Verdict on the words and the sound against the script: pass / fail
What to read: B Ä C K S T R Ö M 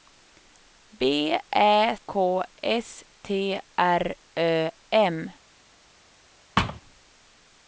fail